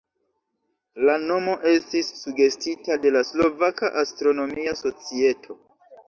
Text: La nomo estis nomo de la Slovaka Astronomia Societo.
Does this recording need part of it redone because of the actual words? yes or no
yes